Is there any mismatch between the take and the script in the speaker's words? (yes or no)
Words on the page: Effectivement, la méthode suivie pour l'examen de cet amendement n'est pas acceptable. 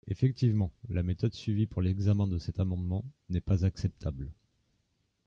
no